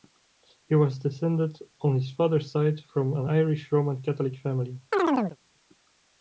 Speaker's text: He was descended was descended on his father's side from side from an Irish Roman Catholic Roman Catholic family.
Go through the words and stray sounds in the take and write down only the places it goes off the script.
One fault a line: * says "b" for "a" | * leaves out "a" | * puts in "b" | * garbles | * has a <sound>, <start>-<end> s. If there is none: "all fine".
* leaves out "was descended"
* leaves out "side from"
* leaves out "Roman Catholic"
* has a chirp, 4.9-5.4 s